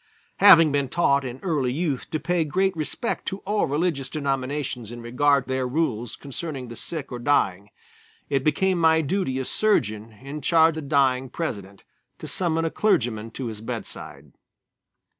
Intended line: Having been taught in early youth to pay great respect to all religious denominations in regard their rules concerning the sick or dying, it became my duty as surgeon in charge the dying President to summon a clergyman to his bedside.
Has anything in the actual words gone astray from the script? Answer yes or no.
no